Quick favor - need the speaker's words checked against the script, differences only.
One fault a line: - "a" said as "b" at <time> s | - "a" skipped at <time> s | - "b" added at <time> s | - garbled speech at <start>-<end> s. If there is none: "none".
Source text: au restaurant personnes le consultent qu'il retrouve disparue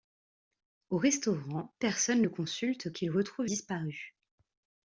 none